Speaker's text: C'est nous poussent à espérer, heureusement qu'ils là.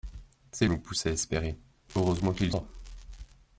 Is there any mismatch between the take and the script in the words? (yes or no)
no